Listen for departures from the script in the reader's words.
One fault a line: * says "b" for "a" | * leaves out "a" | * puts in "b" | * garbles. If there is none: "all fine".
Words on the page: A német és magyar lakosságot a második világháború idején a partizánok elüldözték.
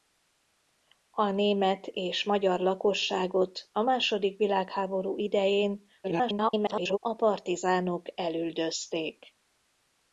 * garbles